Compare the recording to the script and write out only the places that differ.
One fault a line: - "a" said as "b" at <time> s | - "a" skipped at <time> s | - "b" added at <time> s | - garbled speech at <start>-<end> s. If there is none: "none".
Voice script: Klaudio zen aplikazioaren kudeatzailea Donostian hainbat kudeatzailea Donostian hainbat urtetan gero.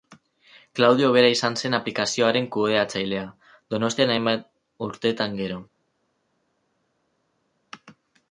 - "bera izan" added at 1.1 s
- "kudeatzailea Donostian hainbat" skipped at 4.5 s